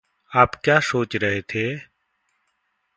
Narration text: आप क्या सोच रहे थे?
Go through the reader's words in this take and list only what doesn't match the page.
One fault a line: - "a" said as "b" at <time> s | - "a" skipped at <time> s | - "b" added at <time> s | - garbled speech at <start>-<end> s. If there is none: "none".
none